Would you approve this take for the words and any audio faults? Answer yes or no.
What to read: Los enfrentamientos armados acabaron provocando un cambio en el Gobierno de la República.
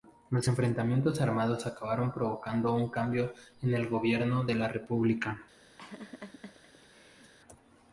no